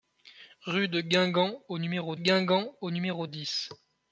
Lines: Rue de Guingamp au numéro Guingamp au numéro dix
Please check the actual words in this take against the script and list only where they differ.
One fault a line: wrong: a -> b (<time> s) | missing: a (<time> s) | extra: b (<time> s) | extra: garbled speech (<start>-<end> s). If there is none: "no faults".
no faults